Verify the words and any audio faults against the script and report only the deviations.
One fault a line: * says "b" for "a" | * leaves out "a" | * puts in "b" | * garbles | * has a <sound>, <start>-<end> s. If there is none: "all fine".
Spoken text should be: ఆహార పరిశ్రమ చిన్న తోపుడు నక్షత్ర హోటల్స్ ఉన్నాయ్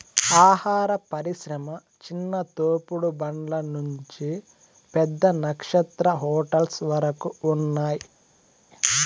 * puts in "బండ్ల నుంచి పెద్ద"
* puts in "వరకు"